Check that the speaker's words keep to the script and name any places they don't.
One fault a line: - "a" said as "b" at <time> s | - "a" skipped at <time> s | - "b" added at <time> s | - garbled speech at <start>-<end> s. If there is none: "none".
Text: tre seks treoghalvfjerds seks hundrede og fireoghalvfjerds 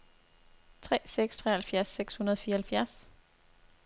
none